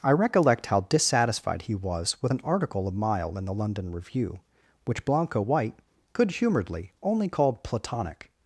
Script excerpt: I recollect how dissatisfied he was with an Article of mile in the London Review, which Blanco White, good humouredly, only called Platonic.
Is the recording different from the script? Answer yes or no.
no